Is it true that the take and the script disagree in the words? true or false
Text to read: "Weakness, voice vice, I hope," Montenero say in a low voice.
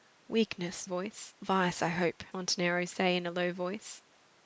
false